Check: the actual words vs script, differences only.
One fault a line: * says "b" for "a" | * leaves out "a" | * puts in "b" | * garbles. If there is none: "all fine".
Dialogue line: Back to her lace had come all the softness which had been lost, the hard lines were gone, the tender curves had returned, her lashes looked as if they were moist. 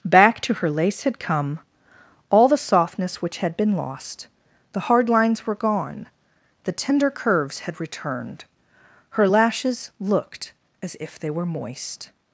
all fine